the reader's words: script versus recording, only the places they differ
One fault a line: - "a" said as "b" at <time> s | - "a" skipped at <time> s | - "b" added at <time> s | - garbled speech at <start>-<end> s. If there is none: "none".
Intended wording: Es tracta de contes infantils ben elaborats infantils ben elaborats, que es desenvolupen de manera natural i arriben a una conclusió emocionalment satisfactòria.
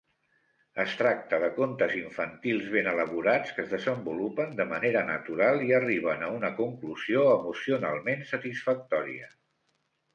- "infantils ben elaborats" skipped at 3.6 s